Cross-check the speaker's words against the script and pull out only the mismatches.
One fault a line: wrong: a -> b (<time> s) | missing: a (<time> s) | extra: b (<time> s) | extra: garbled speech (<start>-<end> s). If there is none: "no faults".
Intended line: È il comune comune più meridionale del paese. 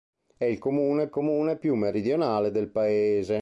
no faults